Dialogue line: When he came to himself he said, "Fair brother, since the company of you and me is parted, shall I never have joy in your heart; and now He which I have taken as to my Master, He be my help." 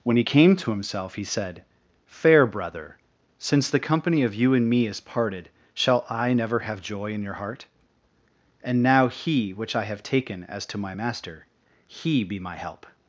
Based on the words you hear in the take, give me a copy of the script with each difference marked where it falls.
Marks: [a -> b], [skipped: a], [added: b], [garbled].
When he came to himself he said, "Fair brother, since the company of you and me is parted, shall I never have joy in your heart; and now He which I have taken as to my Master, He be my help."